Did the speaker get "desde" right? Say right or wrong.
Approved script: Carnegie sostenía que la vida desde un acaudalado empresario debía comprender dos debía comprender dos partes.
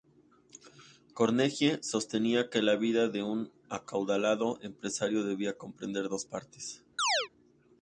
wrong